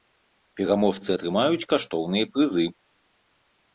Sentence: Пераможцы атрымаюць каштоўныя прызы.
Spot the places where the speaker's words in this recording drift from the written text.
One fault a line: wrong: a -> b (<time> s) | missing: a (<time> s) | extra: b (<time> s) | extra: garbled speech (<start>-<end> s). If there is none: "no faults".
no faults